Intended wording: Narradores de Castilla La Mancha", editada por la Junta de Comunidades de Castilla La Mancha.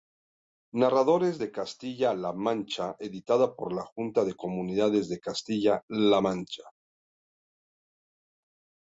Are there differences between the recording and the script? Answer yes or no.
no